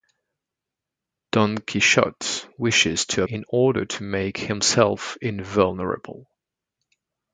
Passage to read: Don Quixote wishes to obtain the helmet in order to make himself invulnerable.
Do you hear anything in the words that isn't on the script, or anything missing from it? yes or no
yes